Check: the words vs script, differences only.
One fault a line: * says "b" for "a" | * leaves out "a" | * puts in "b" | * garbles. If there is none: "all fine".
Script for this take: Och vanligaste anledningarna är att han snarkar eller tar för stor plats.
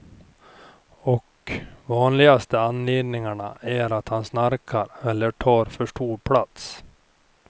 all fine